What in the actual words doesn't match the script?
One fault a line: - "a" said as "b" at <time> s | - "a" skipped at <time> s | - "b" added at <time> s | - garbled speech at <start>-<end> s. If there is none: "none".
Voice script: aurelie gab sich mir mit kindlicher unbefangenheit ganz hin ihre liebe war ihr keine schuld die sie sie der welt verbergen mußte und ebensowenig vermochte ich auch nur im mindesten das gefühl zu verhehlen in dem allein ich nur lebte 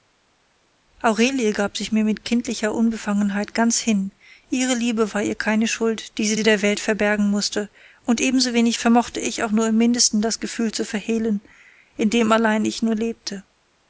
none